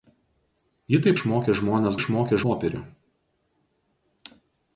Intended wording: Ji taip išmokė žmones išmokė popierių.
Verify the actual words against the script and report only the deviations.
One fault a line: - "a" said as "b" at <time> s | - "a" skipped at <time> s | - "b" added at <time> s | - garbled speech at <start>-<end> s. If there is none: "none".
none